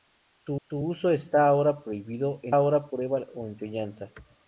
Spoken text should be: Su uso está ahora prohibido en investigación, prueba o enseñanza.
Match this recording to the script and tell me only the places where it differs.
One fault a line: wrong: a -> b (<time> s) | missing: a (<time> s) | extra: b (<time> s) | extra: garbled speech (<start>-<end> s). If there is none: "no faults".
extra: su (0.6 s)
wrong: investigación -> ahora (2.5 s)